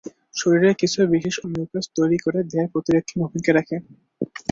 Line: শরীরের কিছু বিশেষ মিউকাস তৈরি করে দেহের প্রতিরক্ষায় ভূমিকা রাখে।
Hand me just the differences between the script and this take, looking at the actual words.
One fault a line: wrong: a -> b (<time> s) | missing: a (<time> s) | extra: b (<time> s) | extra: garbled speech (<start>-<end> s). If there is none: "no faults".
no faults